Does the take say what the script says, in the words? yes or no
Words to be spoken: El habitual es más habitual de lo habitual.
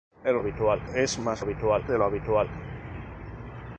yes